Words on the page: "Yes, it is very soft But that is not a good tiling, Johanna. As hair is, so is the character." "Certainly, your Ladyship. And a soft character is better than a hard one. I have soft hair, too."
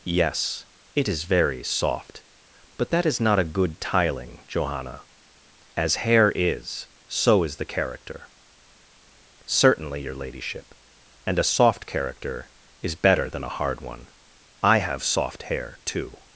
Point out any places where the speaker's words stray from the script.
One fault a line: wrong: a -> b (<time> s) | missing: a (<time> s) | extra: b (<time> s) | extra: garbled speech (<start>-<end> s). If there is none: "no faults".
no faults